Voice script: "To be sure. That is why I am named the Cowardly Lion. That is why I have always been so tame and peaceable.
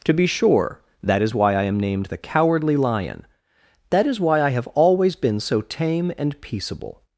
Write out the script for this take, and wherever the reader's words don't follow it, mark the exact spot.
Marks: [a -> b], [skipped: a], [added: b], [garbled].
"To be sure. That is why I am named the Cowardly Lion. That is why I have always been so tame and peaceable.